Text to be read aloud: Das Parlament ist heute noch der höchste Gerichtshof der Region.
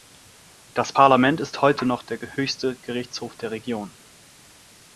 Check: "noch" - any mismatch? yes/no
no